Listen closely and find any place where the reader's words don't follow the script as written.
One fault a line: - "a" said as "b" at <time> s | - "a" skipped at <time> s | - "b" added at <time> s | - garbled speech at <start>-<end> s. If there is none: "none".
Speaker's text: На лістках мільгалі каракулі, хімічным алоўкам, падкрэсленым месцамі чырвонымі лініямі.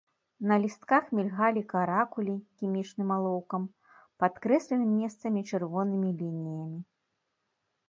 none